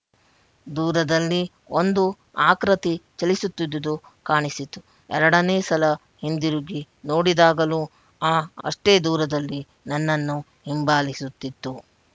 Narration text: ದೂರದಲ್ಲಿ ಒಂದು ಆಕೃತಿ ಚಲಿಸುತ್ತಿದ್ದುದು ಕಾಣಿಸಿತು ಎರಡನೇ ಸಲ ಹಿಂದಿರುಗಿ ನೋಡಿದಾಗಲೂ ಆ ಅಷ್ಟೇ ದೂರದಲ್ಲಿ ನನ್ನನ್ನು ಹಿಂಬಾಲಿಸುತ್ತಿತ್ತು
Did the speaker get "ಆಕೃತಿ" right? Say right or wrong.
right